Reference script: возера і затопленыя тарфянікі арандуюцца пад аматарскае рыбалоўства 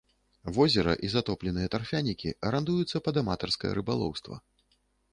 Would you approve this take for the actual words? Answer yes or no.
yes